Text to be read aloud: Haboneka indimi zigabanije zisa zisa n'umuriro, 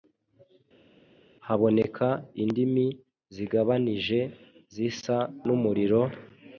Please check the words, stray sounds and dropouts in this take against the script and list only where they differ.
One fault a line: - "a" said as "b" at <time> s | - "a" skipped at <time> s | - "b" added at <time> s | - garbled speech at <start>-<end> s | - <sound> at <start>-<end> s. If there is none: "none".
- "zisa" skipped at 5.2 s